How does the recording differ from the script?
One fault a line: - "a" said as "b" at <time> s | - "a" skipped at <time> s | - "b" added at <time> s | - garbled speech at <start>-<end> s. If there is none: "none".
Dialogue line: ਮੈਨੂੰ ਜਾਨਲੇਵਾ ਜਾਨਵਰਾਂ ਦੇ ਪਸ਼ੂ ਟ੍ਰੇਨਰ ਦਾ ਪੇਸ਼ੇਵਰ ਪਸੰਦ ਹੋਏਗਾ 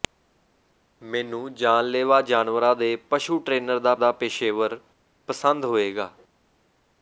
- "ਦਾ" added at 4.0 s